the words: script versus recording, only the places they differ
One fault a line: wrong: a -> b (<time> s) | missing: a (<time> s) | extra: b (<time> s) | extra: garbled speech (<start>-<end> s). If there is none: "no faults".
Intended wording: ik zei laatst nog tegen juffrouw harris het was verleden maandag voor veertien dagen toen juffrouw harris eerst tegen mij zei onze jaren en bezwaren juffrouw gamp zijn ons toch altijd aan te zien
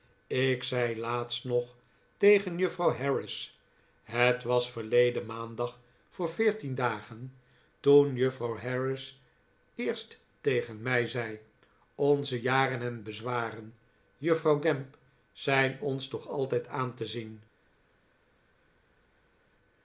no faults